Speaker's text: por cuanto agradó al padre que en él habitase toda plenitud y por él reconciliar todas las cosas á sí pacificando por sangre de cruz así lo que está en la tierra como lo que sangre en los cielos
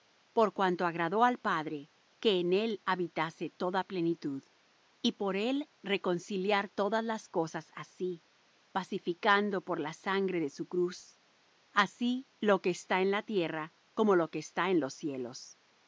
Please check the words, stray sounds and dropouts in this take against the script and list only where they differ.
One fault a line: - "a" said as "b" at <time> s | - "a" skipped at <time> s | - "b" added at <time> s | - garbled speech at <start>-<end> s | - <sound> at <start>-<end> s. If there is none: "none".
- "la" added at 9.8 s
- "su" added at 10.5 s
- "sangre" said as "está" at 14.4 s